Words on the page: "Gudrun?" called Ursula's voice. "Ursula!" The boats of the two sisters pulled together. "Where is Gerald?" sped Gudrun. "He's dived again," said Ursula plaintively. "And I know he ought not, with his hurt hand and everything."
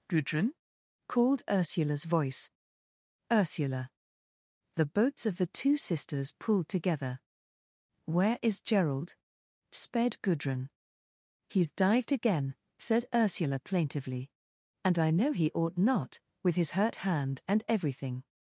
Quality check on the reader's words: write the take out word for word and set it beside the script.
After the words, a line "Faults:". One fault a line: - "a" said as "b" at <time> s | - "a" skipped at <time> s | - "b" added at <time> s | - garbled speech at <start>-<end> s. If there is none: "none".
"Gudrun?" called Ursula's voice. "Ursula!" The boats of the two sisters pulled together. "Where is Gerald?" sped Gudrun. "He's dived again," said Ursula plaintively. "And I know he ought not, with his hurt hand and everything."
Faults:
none